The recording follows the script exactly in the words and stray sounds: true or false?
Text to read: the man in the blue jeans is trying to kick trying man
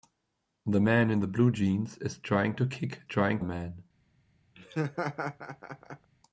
false